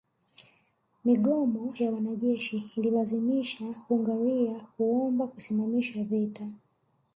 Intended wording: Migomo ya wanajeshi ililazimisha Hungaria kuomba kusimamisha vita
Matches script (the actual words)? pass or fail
pass